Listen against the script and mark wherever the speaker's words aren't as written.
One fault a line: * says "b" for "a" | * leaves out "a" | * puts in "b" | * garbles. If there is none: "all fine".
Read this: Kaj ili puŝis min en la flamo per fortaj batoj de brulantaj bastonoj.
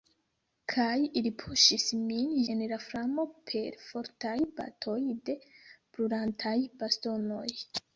all fine